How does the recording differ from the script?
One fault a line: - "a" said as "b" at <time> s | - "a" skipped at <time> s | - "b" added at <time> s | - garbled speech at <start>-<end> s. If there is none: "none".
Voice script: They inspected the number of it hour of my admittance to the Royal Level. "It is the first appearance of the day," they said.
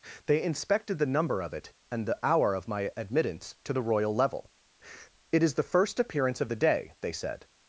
- "and the" added at 1.9 s